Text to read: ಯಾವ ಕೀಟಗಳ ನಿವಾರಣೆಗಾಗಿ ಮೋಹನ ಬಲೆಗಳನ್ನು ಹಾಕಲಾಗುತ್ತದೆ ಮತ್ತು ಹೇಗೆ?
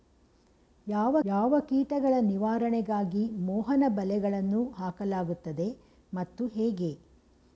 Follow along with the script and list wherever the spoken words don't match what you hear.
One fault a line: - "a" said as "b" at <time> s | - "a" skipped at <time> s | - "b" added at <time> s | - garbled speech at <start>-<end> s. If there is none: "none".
- "ಯಾವ" added at 1.2 s